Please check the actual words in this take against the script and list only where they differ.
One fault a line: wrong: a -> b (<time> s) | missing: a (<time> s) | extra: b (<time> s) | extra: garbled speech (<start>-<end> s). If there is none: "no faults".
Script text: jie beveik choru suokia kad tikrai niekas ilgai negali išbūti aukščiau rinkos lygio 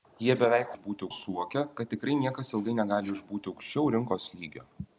wrong: choru -> išbūti (0.7 s)